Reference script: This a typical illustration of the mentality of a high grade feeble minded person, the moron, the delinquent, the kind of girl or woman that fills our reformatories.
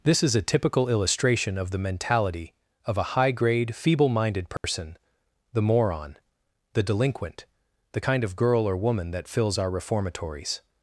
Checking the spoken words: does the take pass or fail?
fail